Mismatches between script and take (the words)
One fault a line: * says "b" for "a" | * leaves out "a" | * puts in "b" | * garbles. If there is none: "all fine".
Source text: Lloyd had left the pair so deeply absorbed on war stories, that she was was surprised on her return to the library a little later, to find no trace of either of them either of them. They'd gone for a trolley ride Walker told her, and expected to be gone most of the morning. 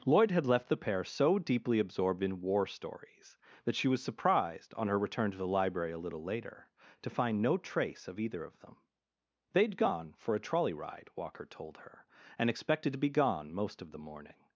* says "in" for "on"
* leaves out "was"
* leaves out "either of them"